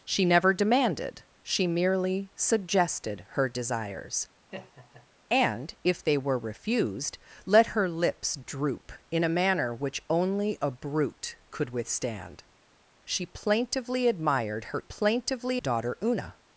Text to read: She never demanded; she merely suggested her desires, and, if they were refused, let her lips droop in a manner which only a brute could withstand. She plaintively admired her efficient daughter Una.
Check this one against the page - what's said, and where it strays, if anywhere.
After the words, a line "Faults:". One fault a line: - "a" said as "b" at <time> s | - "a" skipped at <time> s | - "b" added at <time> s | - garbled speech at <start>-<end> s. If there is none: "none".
She never demanded; she merely suggested her desires, and, if they were refused, let her lips droop in a manner which only a brute could withstand. She plaintively admired her plaintively daughter Una.
Faults:
- "efficient" said as "plaintively" at 14.8 s